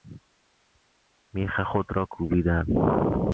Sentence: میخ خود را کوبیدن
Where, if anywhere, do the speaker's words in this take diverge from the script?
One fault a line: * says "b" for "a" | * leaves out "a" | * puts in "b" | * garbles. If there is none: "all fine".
all fine